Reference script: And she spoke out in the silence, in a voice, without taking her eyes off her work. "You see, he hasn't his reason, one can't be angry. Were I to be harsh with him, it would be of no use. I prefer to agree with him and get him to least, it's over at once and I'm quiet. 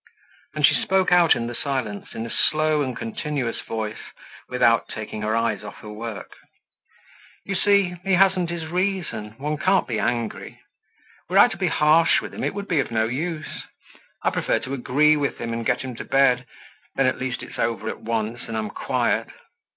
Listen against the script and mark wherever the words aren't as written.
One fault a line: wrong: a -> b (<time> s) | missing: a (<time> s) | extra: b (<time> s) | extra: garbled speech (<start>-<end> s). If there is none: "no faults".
extra: slow and continuous (2.3 s)
extra: bed then at (16.0 s)